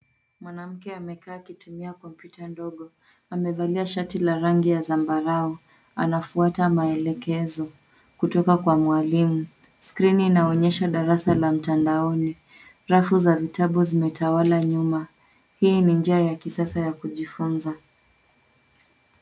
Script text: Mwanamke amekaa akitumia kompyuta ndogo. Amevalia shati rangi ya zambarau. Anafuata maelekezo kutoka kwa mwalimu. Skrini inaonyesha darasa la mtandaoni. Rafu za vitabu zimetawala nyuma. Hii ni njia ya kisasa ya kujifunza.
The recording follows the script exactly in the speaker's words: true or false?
false